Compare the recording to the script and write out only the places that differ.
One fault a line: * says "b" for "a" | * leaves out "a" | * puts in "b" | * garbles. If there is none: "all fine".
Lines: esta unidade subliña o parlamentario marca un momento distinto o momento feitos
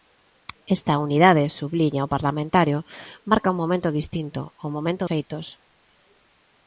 all fine